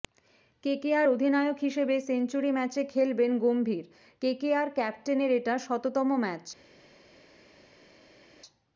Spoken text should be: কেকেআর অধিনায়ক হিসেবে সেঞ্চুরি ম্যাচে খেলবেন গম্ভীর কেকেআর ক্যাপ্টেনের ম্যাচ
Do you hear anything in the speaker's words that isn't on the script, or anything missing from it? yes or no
yes